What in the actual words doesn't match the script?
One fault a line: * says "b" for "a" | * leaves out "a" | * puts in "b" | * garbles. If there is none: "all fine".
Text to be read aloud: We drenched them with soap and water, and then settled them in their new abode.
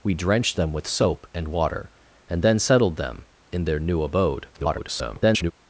* garbles